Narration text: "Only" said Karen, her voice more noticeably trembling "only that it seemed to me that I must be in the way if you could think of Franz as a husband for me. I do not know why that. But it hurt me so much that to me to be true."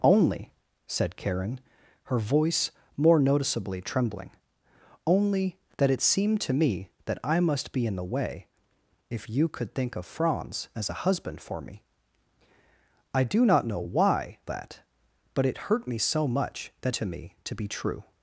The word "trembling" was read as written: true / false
true